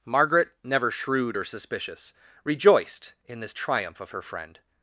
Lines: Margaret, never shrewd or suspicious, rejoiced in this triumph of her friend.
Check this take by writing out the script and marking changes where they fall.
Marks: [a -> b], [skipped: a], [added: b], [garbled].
Margaret, never shrewd or suspicious, rejoiced in this triumph of her friend.